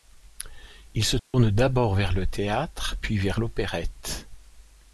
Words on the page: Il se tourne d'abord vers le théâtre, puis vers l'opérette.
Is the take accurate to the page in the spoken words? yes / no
yes